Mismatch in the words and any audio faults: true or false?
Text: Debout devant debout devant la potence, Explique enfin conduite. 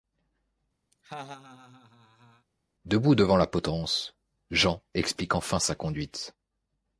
true